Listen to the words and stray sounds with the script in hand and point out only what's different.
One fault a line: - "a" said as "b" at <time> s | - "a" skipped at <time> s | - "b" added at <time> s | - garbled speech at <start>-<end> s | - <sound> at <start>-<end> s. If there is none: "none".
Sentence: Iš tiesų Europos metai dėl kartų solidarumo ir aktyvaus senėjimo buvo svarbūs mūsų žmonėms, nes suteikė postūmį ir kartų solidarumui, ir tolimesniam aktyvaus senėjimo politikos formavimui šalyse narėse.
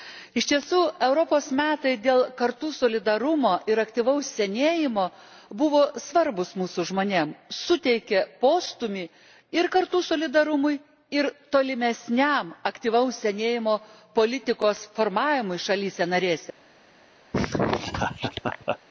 - "nes" skipped at 7.3 s
- laugh at 17.3-18.8 s